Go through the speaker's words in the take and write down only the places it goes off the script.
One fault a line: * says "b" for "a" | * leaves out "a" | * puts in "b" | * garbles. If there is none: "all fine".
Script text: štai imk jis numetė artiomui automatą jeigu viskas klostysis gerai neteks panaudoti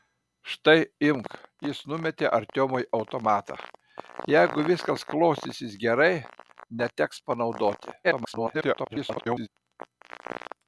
* garbles